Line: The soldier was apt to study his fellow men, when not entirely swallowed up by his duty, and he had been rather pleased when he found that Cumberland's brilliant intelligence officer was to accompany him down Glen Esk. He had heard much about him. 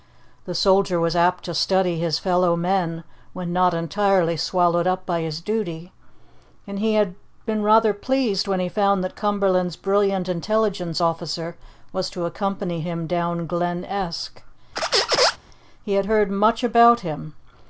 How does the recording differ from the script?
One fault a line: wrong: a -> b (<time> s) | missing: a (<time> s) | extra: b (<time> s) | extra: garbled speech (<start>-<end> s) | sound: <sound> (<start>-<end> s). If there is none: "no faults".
sound: squeak (14.8-15.4 s)